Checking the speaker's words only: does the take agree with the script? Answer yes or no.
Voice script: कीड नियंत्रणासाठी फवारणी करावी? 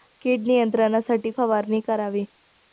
yes